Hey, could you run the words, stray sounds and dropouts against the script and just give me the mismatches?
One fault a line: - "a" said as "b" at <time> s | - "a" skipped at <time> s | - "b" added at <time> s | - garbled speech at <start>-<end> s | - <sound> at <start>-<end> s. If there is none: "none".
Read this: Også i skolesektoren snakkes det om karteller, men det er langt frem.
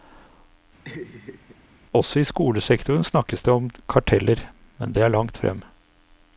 - laugh at 0.8-1.6 s